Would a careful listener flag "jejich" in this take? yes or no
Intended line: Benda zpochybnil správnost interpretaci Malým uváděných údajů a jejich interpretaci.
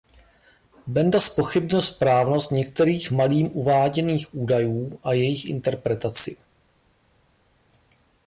no